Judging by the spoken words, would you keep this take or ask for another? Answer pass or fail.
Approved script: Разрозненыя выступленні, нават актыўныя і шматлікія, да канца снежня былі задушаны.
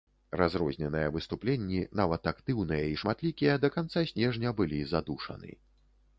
pass